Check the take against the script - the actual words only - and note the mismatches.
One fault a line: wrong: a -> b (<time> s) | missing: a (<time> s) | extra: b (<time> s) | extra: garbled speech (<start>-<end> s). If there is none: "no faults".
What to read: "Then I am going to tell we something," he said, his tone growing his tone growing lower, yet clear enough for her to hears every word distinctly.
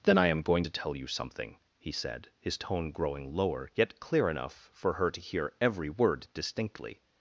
wrong: we -> you (0.9 s)
missing: his tone growing (3.3 s)
wrong: hears -> hear (5.2 s)